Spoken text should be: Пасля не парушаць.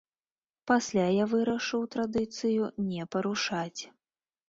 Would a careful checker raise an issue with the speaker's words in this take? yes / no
yes